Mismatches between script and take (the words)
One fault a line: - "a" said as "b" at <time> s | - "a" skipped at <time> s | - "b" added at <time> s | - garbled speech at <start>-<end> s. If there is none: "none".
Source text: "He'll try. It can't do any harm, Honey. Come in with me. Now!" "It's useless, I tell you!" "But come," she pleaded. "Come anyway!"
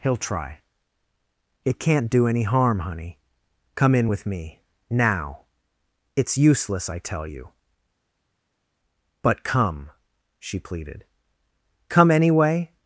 none